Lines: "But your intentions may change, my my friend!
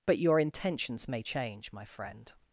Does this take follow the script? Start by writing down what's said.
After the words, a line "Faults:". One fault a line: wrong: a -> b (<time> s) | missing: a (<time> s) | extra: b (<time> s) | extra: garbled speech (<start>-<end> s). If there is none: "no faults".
"But your intentions may change, my friend!
Faults:
missing: my (1.8 s)